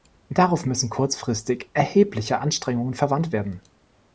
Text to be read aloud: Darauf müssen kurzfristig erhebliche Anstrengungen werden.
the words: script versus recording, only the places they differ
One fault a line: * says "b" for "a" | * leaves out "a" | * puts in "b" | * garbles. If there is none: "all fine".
* puts in "verwandt"